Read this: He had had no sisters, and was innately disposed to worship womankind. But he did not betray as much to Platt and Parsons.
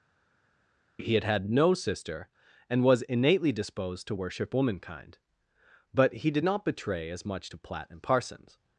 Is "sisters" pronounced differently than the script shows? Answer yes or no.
yes